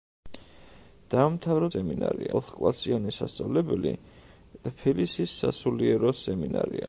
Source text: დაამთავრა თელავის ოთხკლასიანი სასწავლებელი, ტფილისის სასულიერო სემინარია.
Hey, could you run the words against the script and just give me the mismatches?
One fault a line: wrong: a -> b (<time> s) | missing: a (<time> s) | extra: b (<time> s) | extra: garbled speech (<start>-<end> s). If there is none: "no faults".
wrong: თელავის -> სემინარია (1.7 s)